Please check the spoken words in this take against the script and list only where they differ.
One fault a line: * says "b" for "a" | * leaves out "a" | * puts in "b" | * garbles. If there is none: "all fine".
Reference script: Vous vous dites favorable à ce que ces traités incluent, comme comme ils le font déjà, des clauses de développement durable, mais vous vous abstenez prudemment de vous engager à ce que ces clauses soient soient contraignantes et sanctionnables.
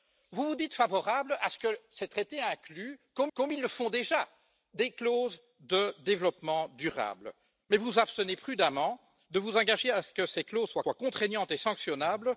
all fine